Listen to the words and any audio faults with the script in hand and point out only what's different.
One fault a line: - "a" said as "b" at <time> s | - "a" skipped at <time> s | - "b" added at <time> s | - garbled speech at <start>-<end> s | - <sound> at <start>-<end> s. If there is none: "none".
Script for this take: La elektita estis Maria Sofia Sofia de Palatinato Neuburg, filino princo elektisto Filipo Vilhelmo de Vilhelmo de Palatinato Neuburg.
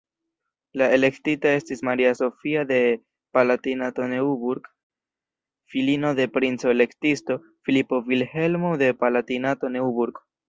- "Sofia" skipped at 2.6 s
- "de" added at 6.1 s
- "Vilhelmo de" skipped at 8.9 s